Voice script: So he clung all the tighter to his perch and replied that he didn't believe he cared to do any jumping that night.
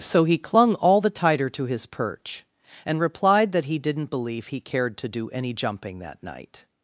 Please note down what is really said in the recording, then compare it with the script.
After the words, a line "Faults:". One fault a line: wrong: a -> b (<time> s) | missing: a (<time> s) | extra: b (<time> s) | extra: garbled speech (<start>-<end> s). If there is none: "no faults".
So he clung all the tighter to his perch and replied that he didn't believe he cared to do any jumping that night.
Faults:
no faults